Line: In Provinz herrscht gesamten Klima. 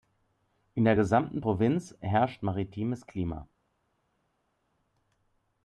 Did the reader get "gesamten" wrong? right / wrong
wrong